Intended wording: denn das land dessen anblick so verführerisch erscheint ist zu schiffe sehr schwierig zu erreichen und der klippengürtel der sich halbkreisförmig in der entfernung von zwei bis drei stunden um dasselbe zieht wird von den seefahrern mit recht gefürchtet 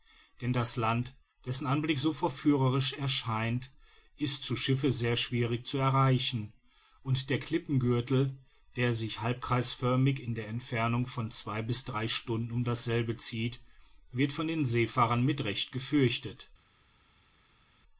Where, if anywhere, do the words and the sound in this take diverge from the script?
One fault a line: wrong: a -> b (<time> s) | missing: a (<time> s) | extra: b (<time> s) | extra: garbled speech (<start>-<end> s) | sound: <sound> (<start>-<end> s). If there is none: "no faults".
no faults